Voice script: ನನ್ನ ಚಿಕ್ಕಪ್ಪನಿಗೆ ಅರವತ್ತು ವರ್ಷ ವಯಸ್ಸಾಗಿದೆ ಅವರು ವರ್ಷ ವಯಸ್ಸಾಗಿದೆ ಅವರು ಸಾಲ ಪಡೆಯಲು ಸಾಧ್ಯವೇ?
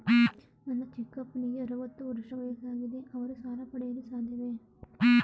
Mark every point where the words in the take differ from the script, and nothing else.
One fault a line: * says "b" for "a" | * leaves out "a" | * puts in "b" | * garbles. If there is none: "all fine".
* leaves out "ವರ್ಷ ವಯಸ್ಸಾಗಿದೆ ಅವರು"